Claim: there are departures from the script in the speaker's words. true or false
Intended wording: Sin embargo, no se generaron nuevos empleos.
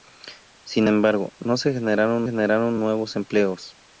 true